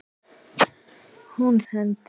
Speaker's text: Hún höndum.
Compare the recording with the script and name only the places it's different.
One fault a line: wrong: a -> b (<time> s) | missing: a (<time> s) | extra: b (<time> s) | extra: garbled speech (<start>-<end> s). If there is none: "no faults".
no faults